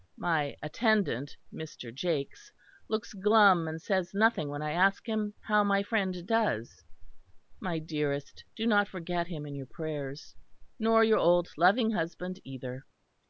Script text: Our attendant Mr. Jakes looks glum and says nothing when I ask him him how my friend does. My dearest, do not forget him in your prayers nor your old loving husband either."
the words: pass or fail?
fail